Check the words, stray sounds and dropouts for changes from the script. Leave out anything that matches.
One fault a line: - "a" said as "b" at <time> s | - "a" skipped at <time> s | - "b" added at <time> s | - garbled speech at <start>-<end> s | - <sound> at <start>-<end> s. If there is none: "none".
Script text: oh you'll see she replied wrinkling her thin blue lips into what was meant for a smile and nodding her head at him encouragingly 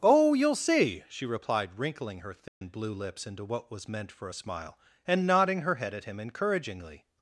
- dropout at 2.5-2.6 s